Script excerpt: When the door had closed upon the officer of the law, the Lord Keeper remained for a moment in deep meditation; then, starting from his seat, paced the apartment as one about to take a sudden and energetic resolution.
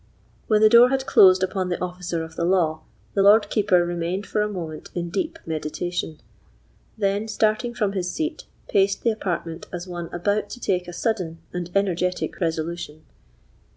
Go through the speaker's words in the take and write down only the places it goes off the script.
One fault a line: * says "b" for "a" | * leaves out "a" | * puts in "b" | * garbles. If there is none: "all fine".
all fine